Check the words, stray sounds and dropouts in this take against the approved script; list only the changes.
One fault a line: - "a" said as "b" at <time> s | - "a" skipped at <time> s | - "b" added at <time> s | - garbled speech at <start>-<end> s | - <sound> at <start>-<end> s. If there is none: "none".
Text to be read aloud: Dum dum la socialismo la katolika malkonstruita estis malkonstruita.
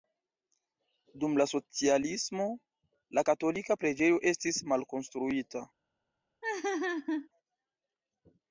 - "dum" skipped at 1.4 s
- "malkonstruita" said as "preĝejo" at 3.8 s
- laugh at 6.4-7.3 s